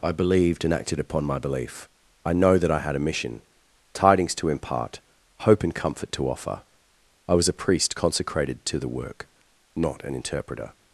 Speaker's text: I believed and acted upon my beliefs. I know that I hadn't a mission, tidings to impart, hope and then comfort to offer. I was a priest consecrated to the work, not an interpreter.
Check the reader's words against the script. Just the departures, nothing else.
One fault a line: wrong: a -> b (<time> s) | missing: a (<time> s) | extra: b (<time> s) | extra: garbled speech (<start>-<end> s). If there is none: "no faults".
wrong: beliefs -> belief (1.4 s)
wrong: hadn't -> had (2.8 s)
missing: then (5.7 s)